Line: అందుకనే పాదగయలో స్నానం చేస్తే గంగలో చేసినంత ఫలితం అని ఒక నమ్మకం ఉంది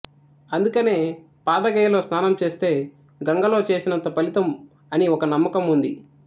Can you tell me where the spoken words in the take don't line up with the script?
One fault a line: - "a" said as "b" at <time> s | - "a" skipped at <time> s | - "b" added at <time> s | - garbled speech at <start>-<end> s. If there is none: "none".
none